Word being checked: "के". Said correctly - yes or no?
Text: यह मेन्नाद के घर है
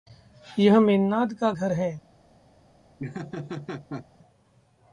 no